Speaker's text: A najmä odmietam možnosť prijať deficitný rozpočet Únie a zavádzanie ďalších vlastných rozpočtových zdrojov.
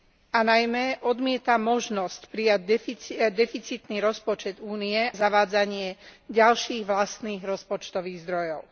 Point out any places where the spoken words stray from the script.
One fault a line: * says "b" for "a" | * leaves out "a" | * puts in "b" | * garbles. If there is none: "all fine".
* leaves out "a"